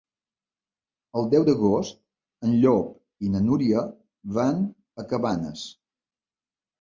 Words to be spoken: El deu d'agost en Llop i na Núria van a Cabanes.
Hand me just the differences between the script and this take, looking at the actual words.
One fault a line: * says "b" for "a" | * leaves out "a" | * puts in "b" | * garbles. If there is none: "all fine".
all fine